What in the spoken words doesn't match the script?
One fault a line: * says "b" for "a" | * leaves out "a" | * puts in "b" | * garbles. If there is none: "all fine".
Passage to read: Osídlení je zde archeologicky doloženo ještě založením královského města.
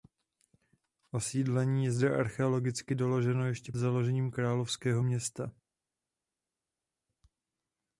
all fine